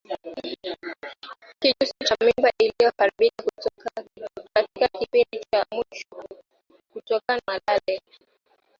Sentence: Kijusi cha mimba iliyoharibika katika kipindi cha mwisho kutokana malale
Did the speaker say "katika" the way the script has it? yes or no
yes